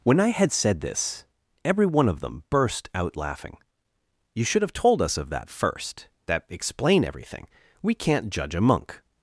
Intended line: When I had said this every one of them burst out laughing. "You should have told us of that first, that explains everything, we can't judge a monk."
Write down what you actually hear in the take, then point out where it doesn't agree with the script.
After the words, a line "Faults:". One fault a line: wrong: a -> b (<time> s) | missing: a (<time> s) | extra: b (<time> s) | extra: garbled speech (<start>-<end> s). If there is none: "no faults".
When I had said this every one of them burst out laughing. "You should have told us of that first, that explain everything, we can't judge a monk."
Faults:
wrong: explains -> explain (6.5 s)